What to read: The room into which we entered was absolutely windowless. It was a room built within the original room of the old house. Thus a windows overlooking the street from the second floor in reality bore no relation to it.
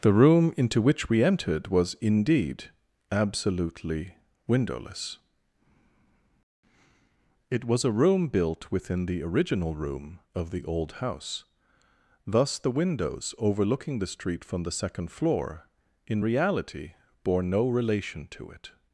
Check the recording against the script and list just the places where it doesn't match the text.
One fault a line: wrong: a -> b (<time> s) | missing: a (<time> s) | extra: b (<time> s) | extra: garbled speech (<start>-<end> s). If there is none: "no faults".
extra: indeed (2.0 s)
wrong: a -> the (12.6 s)